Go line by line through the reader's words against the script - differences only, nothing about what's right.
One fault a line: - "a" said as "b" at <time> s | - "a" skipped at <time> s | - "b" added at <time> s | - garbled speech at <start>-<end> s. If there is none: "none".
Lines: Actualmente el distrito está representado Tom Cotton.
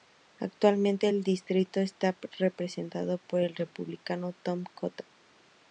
- "por el Republicano" added at 3.2 s